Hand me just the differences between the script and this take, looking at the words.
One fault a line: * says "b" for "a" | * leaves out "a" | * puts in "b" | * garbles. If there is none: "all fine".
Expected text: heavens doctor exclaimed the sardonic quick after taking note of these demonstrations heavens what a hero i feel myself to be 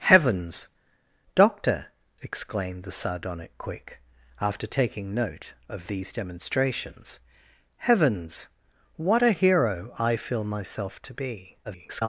* garbles